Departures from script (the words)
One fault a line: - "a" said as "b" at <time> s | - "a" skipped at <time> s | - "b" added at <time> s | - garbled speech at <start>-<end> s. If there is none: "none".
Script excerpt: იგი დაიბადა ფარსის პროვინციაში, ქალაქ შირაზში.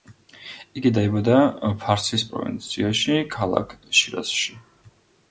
none